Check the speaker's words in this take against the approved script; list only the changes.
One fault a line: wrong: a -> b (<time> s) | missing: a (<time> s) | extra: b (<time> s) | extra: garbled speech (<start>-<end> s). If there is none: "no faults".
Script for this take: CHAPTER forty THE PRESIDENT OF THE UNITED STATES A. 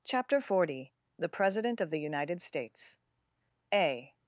no faults